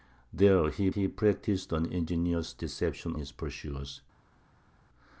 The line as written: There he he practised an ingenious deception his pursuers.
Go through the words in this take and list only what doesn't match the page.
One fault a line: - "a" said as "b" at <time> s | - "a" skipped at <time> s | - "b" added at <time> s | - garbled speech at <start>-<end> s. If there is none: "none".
none